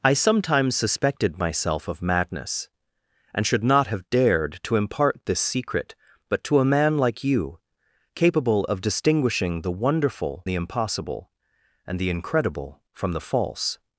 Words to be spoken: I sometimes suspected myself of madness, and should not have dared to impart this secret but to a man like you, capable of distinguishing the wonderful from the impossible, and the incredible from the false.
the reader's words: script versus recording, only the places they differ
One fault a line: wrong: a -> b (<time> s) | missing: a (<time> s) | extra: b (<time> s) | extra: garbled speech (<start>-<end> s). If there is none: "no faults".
missing: from (10.5 s)